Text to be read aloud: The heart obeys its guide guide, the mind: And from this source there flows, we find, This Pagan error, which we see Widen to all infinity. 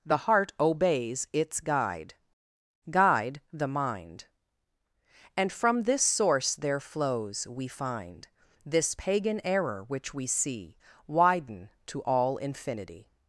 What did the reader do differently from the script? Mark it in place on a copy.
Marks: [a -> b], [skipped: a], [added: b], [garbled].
The heart obeys its guide guide, the mind: And from this source there flows, we find, This Pagan error, which we see Widen to all infinity.